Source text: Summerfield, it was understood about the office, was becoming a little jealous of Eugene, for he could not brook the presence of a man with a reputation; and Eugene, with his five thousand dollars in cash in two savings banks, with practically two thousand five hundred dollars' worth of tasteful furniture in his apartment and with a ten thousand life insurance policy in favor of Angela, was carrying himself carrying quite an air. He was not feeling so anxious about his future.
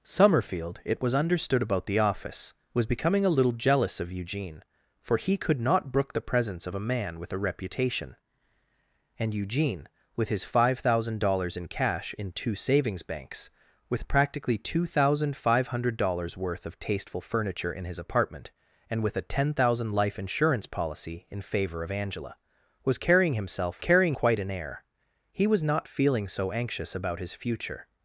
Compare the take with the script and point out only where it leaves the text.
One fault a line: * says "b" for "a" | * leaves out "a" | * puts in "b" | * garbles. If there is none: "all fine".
all fine